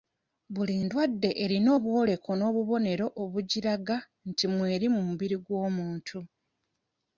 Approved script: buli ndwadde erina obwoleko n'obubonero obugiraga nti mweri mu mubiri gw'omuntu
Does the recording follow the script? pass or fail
pass